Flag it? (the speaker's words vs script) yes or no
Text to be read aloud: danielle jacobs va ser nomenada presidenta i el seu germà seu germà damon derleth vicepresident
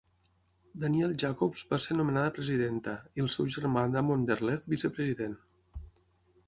yes